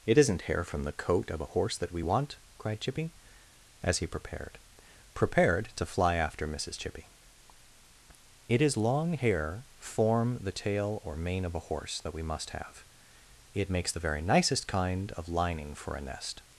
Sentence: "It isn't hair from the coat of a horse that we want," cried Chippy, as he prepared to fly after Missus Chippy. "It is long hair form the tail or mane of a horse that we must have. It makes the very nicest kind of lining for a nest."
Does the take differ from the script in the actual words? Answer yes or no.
yes